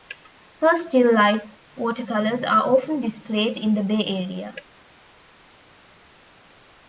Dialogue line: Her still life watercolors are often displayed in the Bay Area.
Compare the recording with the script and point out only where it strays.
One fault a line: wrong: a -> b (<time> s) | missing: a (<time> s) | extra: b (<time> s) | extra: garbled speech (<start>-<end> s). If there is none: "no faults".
no faults